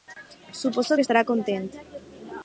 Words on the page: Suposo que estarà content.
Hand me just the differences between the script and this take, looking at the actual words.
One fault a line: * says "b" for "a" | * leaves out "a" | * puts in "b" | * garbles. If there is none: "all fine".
all fine